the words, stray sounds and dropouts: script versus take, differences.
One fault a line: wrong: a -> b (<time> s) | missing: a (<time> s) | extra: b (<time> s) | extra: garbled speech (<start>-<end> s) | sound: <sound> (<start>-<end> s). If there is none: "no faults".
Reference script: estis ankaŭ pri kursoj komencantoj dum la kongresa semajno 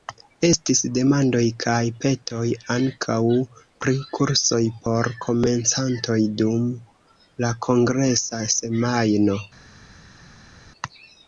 extra: demandoj kaj petoj (0.9 s)
extra: por (4.9 s)